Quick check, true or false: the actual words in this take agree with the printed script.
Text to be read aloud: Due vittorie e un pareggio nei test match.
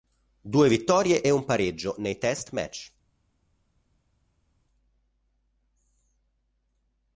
true